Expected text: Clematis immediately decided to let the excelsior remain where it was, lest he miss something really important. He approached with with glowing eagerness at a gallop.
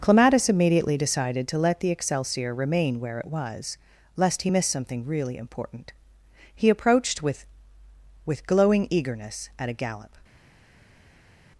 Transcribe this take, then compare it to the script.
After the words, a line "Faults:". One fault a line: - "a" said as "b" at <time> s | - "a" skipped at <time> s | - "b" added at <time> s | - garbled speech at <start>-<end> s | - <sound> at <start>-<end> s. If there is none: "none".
Clematis immediately decided to let the excelsior remain where it was, lest he miss something really important. He approached with with glowing eagerness at a gallop.
Faults:
none